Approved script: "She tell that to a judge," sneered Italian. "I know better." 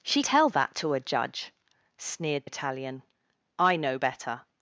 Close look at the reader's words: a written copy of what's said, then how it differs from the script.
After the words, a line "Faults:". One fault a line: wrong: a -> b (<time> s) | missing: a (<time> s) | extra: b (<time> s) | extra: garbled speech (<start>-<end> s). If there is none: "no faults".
"She tell that to a judge," sneered Italian. "I know better."
Faults:
no faults